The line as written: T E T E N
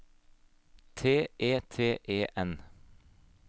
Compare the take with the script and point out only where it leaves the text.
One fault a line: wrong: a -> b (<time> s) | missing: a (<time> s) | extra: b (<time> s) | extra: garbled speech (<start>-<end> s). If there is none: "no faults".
no faults